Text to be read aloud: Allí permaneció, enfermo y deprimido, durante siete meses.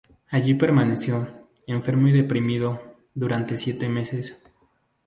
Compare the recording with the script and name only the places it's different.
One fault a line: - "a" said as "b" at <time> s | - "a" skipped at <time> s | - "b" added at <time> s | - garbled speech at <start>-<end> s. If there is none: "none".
none